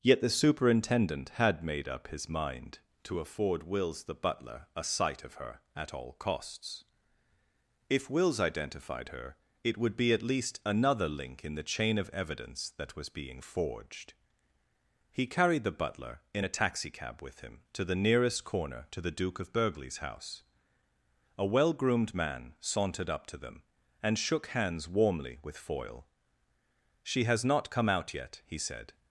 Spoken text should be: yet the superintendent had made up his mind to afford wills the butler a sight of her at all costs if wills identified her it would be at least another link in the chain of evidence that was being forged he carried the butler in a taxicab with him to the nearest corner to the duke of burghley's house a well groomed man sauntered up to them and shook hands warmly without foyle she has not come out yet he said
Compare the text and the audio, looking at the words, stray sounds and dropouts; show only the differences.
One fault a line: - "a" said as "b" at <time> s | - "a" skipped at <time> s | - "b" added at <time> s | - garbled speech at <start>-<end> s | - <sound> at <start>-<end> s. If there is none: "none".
- "without" said as "with" at 25.4 s